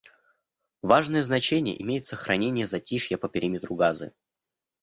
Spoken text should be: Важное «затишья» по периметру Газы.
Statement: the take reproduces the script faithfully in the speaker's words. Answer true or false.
false